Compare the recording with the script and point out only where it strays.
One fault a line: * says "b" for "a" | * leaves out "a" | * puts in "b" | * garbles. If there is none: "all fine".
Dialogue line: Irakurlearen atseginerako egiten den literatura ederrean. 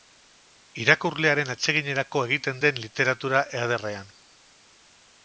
all fine